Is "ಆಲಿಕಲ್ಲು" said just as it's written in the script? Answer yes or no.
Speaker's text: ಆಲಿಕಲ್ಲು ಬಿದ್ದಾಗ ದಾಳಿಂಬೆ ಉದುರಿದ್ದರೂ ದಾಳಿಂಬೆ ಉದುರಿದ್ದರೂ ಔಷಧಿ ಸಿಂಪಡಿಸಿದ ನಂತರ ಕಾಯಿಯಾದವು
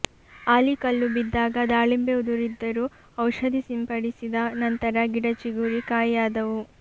yes